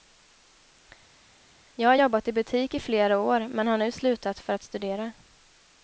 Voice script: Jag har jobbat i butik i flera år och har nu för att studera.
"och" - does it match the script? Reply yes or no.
no